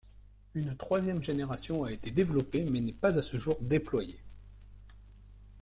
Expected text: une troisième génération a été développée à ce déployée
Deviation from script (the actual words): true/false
true